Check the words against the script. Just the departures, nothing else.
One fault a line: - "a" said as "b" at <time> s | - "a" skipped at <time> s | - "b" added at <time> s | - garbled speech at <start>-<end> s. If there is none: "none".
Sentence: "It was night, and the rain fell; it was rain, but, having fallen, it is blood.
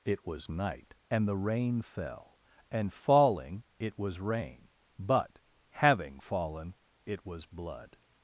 - "and falling" added at 2.7 s
- "is" said as "was" at 7.3 s